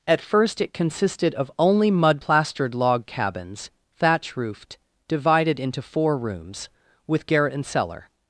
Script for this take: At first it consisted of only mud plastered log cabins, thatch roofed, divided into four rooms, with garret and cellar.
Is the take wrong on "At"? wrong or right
right